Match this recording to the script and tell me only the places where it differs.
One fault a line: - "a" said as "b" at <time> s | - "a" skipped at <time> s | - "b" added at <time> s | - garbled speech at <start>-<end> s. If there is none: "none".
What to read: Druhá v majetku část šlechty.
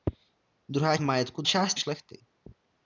none